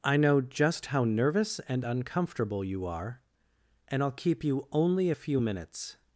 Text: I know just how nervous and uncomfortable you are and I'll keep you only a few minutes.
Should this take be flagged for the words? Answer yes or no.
no